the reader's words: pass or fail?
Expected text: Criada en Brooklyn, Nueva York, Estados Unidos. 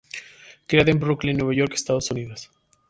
pass